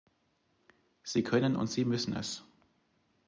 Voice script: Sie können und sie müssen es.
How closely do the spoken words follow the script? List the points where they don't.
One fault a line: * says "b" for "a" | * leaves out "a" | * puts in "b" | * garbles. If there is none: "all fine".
all fine